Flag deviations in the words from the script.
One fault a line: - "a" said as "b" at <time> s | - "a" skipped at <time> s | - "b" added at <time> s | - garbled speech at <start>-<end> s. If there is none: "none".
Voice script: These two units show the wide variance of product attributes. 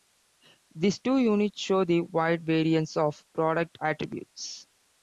none